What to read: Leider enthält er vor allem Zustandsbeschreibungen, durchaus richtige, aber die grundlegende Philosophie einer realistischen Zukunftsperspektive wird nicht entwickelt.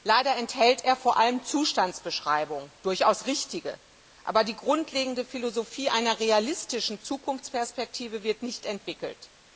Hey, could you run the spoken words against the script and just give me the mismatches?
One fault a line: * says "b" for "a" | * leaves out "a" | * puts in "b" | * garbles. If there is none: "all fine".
all fine